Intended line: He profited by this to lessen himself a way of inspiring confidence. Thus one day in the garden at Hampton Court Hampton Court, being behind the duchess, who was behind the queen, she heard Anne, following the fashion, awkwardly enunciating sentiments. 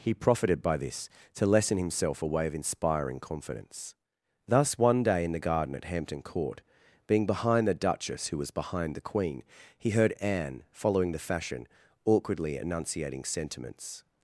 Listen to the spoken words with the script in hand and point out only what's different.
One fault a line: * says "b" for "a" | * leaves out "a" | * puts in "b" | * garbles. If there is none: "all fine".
* leaves out "Hampton Court"
* says "he" for "she"